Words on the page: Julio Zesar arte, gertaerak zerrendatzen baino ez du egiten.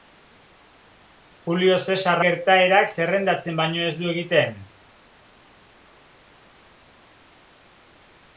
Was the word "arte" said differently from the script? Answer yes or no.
yes